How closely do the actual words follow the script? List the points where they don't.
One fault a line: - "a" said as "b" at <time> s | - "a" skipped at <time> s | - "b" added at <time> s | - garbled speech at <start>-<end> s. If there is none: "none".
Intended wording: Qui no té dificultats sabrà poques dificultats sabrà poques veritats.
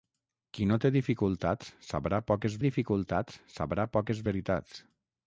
none